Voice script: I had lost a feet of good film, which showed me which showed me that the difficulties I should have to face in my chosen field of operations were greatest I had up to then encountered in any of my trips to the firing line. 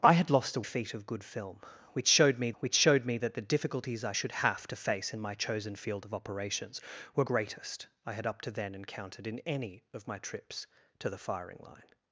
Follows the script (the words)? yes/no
yes